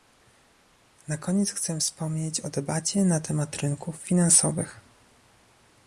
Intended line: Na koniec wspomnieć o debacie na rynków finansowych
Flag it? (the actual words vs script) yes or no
yes